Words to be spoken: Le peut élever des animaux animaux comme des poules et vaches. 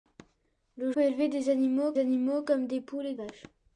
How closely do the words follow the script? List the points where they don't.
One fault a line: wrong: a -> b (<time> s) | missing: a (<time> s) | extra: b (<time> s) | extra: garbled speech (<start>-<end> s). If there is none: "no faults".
no faults